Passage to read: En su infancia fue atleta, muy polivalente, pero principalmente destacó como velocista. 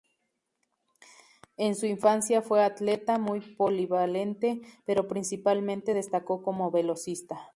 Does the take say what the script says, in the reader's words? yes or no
yes